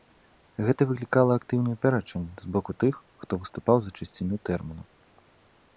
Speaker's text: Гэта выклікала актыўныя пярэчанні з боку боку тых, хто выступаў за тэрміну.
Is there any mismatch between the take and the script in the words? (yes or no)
yes